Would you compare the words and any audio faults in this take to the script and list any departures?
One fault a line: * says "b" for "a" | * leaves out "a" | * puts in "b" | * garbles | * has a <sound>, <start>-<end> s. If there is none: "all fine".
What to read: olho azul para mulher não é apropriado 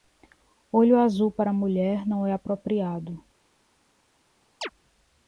* has a chirp, 4.6-4.7 s